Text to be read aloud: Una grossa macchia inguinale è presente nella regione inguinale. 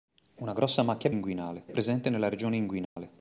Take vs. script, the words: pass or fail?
pass